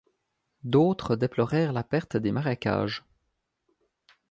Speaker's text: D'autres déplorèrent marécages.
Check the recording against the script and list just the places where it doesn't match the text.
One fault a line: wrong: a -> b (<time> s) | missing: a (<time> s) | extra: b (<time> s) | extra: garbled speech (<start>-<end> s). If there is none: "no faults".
extra: la perte des (1.7 s)